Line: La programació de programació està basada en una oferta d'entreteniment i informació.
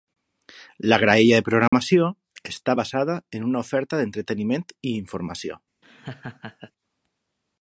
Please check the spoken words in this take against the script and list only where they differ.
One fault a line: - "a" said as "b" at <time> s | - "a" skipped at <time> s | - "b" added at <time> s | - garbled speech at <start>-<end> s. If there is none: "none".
- "programació" said as "graella" at 1.0 s